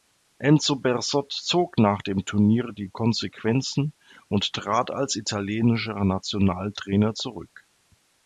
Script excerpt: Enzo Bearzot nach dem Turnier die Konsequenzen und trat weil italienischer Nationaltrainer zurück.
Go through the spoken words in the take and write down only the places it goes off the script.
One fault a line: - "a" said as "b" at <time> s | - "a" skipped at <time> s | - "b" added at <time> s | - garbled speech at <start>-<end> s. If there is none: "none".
- "zog" added at 1.3 s
- "weil" said as "als" at 4.9 s